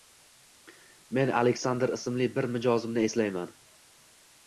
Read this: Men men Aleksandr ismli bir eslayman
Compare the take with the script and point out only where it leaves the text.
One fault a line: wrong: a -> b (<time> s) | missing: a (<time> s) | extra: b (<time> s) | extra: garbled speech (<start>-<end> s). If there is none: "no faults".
missing: men (1.3 s)
extra: mijozimni (2.6 s)